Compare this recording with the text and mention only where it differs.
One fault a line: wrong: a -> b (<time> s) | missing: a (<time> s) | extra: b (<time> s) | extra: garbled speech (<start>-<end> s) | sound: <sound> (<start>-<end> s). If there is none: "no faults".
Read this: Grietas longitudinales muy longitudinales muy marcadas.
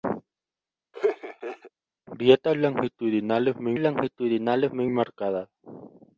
sound: laugh (0.9-1.7 s)